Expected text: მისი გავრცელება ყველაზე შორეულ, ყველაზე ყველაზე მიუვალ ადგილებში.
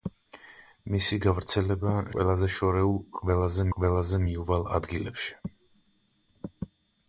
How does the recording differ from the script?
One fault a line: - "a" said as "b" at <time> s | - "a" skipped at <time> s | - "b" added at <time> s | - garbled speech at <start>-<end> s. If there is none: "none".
none